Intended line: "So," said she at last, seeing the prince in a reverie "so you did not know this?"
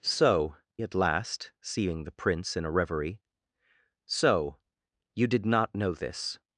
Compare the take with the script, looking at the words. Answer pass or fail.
fail